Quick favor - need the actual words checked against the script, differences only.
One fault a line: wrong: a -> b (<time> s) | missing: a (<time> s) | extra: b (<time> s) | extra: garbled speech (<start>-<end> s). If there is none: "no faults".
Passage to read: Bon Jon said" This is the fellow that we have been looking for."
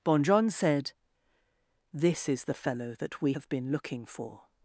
no faults